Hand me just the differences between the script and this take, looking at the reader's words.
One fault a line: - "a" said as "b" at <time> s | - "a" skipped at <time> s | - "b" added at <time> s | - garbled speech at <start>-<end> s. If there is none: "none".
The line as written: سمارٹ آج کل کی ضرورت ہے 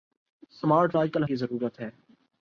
none